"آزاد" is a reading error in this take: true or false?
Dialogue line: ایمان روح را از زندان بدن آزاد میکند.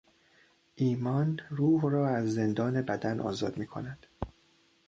false